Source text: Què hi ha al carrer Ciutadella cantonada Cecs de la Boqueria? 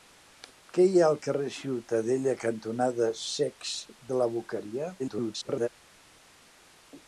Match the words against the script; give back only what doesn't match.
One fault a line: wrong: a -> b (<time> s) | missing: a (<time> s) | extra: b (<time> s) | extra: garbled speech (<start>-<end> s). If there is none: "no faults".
extra: garbled speech (5.0-5.7 s)